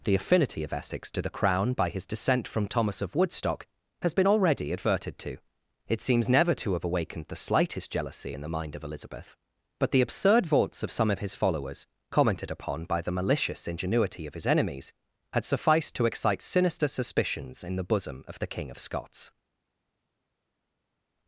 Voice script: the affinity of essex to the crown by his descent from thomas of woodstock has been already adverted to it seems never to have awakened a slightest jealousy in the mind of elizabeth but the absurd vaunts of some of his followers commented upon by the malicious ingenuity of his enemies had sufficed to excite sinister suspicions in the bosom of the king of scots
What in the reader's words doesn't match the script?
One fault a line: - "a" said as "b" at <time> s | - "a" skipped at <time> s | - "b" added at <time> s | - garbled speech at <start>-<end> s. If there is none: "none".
- "a" said as "the" at 7.3 s